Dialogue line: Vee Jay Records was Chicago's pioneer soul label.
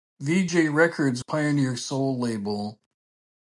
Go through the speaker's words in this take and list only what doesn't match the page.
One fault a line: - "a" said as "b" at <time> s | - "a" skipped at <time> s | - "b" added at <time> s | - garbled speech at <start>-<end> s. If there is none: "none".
- "was Chicago's" skipped at 1.2 s